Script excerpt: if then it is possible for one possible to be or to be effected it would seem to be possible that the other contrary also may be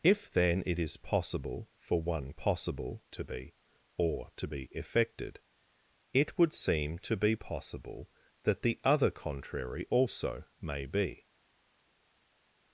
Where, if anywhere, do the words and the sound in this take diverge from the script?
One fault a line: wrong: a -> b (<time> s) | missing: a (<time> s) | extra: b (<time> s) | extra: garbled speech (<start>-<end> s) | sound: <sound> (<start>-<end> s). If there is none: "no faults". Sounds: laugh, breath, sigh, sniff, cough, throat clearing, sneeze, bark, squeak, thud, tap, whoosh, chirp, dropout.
no faults